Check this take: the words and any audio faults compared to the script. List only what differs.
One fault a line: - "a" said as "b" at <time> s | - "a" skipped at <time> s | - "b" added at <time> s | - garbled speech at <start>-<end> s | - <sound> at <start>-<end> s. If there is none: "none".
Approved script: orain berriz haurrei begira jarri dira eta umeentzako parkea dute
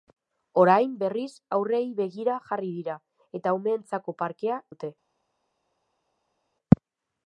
none